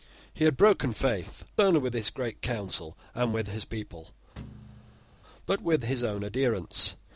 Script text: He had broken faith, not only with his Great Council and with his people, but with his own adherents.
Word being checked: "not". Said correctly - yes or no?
no